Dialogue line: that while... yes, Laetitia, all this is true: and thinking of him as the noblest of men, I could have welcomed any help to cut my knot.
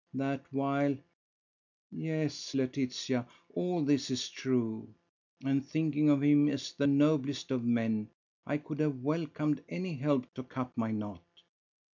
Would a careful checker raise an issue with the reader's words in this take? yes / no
no